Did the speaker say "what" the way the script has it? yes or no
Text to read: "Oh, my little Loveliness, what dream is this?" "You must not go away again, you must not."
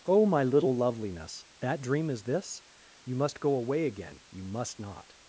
no